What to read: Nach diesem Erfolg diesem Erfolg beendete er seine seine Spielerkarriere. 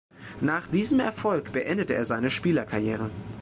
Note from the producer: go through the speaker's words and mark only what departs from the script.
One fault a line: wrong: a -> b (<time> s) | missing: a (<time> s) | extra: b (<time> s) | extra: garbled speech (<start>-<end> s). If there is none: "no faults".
missing: diesem Erfolg (1.5 s)
missing: seine (2.3 s)